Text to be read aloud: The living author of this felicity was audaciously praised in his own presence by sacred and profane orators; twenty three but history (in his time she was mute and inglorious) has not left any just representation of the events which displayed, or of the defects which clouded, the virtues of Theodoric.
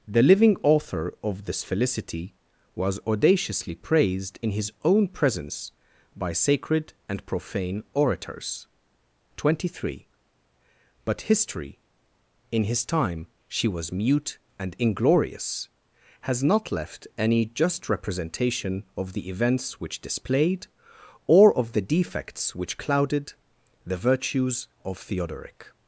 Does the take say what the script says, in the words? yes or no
yes